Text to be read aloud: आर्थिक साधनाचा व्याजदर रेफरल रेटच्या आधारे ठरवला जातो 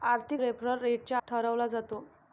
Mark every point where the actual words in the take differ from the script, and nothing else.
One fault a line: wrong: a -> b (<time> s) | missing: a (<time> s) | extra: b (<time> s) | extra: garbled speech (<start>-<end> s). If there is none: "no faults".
missing: साधनाचा व्याजदर (0.4 s)
missing: आधारे (1.2 s)